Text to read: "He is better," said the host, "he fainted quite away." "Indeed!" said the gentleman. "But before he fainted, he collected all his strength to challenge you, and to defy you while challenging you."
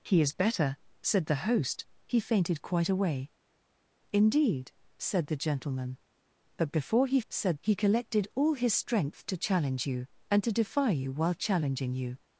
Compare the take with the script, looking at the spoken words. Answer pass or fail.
fail